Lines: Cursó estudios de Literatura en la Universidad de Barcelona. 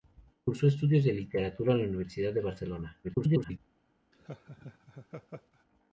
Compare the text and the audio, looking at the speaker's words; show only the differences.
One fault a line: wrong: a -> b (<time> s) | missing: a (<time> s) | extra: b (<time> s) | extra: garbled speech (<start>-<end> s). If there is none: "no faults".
extra: garbled speech (3.0-3.6 s)